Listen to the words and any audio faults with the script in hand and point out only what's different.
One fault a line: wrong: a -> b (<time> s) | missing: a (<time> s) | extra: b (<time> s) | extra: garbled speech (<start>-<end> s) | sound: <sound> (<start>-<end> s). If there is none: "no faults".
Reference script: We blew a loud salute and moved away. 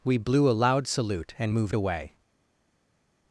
no faults